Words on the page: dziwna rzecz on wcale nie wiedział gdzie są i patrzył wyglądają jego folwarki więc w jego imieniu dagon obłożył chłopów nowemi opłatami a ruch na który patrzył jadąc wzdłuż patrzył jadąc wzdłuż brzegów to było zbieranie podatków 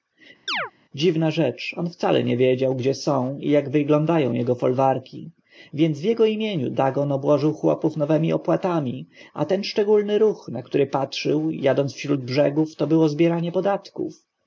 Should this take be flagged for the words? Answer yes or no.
yes